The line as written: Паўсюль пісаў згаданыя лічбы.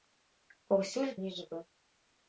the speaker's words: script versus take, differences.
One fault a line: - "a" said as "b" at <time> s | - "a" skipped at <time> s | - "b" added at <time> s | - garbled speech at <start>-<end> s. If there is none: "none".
- "пісаў згаданыя" skipped at 1.1 s